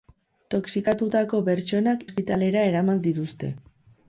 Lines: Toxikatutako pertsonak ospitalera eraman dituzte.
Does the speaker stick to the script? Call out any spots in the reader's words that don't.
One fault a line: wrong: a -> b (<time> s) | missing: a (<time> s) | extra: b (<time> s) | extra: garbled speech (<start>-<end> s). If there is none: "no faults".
no faults